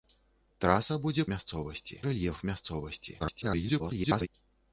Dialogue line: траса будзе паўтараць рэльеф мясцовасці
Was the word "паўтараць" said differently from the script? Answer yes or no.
yes